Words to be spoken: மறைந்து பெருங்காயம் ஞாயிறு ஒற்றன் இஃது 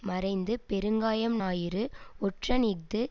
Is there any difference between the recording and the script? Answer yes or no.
no